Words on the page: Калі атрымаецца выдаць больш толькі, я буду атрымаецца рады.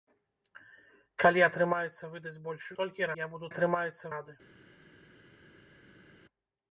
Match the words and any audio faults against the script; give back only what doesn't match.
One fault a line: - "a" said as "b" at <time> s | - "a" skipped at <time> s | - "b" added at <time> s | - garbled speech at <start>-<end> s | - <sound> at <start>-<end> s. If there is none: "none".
none